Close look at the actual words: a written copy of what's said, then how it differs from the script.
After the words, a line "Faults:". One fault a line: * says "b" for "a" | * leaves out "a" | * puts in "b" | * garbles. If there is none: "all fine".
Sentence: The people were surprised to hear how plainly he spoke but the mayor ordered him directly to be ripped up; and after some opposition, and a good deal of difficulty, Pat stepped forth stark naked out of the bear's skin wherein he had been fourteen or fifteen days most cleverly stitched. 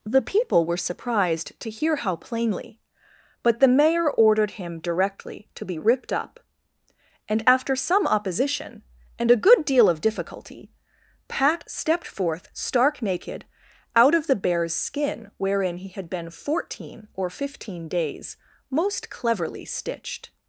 The people were surprised to hear how plainly but the mayor ordered him directly to be ripped up; and after some opposition, and a good deal of difficulty, Pat stepped forth stark naked out of the bear's skin wherein he had been fourteen or fifteen days most cleverly stitched.
Faults:
* leaves out "he spoke"